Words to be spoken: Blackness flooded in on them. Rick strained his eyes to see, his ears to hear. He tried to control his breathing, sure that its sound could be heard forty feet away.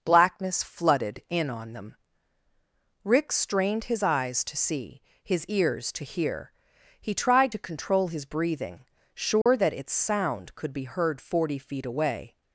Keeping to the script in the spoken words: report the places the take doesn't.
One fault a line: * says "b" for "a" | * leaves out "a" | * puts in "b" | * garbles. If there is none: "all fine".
all fine